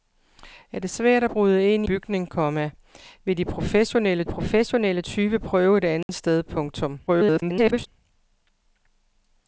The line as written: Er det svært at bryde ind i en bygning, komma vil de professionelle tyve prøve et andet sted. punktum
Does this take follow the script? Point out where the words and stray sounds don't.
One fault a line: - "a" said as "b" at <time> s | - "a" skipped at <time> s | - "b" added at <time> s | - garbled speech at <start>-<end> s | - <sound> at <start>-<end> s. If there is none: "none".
- "en" skipped at 1.9 s
- "professionelle" added at 4.3 s
- dropout at 6.0-6.1 s
- garbled speech at 7.1-7.9 s